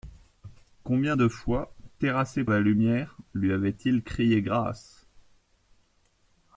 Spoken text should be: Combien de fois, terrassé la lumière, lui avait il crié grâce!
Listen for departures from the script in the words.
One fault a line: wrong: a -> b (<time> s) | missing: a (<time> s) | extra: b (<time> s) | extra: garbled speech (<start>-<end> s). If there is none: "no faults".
no faults